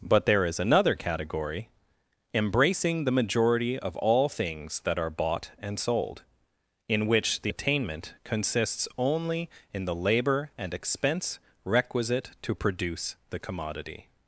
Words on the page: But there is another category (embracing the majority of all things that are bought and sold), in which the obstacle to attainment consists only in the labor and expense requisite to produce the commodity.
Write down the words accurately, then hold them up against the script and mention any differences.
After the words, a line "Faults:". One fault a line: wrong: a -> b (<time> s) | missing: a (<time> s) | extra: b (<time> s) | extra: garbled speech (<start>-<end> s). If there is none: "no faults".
But there is another category (embracing the majority of all things that are bought and sold), in which the attainment consists only in the labor and expense requisite to produce the commodity.
Faults:
missing: obstacle to (7.5 s)